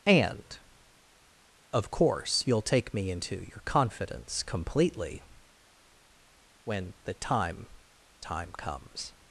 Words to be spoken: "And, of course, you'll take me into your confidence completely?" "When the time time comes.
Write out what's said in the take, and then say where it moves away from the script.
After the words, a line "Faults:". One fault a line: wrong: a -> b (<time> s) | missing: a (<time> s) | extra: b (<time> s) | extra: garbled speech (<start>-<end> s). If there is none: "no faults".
"And, of course, you'll take me into your confidence completely?" "When the time time comes.
Faults:
no faults